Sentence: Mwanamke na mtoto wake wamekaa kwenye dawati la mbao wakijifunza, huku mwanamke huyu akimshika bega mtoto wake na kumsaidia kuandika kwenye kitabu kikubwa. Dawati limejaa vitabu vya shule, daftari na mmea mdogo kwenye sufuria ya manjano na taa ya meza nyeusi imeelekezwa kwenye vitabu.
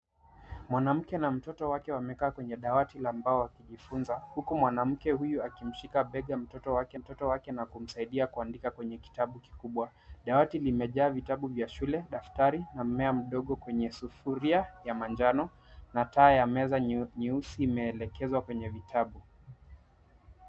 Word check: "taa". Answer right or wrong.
right